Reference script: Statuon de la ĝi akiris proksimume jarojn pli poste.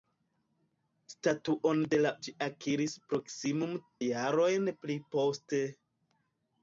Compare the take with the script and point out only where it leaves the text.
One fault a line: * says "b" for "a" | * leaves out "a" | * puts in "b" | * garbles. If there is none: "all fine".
all fine